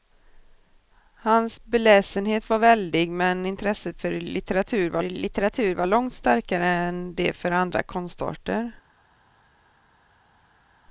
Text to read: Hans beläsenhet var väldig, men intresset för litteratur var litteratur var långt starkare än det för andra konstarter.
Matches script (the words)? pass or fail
pass